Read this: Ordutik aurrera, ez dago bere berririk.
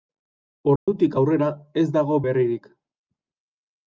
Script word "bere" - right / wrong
wrong